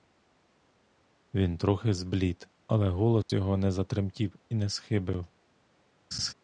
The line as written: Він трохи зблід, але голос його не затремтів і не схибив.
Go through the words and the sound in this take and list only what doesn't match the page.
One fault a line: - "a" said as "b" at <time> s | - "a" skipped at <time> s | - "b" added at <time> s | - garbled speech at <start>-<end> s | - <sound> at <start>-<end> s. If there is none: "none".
- dropout at 3.2-3.3 s
- laugh at 6.1-6.3 s